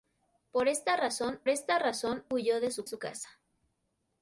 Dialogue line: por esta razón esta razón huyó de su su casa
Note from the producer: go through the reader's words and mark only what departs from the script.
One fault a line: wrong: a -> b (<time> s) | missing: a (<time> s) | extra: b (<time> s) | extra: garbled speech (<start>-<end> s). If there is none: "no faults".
no faults